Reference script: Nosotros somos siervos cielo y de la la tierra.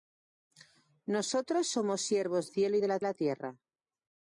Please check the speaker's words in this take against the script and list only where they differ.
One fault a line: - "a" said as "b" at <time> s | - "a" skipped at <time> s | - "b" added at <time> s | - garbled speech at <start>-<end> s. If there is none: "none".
none